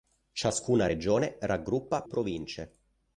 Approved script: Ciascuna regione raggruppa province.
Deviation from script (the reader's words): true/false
false